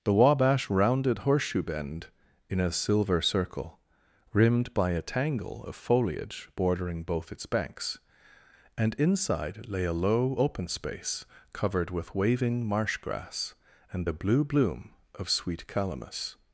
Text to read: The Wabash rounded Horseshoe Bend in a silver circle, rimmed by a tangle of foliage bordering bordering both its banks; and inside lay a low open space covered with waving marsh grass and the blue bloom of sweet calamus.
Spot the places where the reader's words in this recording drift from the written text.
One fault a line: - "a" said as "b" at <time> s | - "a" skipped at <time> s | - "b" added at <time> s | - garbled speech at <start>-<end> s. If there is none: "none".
- "bordering" skipped at 7.0 s